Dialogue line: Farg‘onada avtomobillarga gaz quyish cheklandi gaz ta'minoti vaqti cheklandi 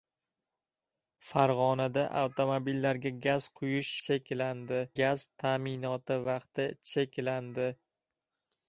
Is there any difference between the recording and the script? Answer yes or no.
no